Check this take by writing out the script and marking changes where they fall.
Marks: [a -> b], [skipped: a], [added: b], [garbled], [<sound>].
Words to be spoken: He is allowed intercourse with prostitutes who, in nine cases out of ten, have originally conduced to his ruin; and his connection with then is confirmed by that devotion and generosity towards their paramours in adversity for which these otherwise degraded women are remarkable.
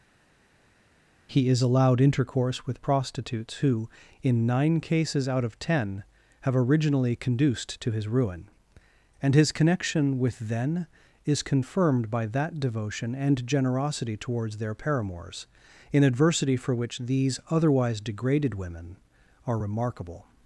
He is allowed intercourse with prostitutes who, in nine cases out of ten, have originally conduced to his ruin; and his connection with then is confirmed by that devotion and generosity towards their paramours in adversity for which these otherwise degraded women are remarkable.